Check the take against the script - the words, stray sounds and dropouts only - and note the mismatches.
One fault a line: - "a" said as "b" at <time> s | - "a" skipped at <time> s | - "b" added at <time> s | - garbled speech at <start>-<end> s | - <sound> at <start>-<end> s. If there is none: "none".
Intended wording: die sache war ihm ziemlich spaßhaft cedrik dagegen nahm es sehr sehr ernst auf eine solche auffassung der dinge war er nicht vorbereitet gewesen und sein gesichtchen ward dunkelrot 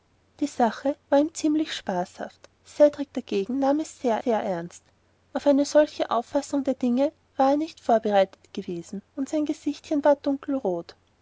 none